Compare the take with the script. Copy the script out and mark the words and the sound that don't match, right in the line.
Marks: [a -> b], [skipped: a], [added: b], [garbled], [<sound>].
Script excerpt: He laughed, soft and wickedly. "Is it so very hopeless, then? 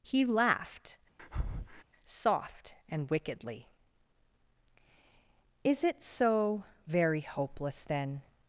He laughed, [breath] soft and wickedly. "Is it so very hopeless, then?